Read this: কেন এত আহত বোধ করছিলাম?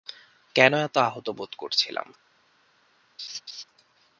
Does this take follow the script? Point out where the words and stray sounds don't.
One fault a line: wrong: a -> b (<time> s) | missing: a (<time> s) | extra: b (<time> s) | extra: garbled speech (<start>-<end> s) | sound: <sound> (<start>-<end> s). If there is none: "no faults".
sound: laugh (3.2-3.6 s)